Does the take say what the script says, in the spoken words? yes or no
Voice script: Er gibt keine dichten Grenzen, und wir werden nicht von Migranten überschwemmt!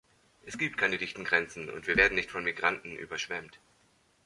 no